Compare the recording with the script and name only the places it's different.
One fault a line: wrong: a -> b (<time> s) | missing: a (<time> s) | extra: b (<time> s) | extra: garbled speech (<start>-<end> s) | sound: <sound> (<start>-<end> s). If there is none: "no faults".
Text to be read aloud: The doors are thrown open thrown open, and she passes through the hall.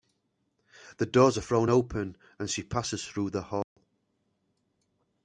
missing: thrown open (2.2 s)
sound: dropout (3.6-3.8 s)